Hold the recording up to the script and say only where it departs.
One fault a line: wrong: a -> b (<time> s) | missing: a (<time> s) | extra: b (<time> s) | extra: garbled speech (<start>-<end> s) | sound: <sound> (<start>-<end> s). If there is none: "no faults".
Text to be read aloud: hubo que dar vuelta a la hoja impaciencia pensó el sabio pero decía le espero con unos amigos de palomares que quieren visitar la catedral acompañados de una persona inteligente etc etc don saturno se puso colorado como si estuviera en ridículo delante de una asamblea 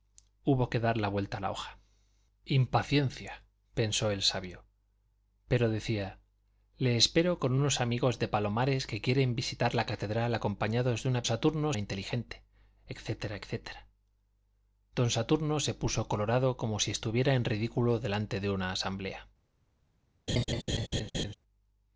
wrong: persona -> saturno (11.2 s)
sound: laugh (20.3-21.3 s)